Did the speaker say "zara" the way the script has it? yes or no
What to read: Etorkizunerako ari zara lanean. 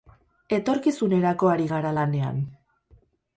no